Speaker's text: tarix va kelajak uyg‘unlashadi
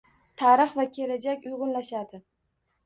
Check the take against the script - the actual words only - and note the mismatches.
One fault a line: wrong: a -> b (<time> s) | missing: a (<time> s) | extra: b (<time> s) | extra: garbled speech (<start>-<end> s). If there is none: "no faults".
no faults